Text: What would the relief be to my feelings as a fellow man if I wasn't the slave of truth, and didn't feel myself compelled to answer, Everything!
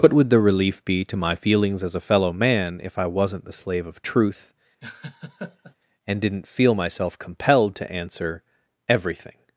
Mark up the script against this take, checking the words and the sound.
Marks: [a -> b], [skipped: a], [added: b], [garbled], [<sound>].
What would the relief be to my feelings as a fellow man if I wasn't the slave of truth, [laugh] and didn't feel myself compelled to answer, Everything!